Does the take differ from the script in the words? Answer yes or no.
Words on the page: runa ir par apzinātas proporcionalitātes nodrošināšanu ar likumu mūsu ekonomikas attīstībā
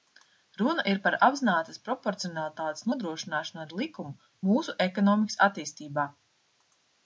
no